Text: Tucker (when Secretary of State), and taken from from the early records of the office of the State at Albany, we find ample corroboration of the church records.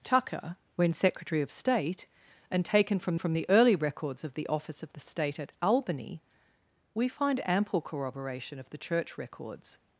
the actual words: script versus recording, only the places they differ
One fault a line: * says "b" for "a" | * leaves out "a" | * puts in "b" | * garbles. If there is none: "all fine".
all fine